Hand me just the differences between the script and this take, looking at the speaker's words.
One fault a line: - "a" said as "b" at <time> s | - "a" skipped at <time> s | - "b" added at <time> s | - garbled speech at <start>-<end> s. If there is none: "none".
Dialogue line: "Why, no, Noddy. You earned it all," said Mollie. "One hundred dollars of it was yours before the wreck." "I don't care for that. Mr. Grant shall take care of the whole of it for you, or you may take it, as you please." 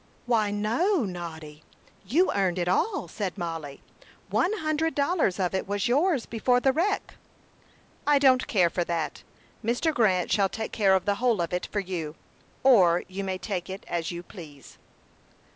none